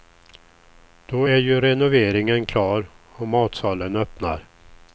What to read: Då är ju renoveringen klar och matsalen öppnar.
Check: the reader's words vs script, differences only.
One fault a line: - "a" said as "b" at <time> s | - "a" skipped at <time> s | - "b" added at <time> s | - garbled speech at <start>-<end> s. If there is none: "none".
none